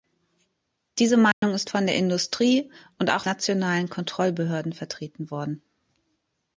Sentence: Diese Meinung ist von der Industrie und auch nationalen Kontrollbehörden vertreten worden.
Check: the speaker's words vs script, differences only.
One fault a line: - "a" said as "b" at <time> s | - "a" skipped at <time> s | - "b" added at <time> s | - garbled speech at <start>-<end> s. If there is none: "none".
none